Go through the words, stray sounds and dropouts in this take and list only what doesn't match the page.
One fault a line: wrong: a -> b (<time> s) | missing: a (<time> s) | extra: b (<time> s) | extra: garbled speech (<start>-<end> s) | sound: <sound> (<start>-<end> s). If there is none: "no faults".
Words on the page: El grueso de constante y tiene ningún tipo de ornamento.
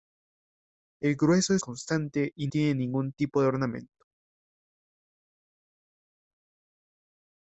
no faults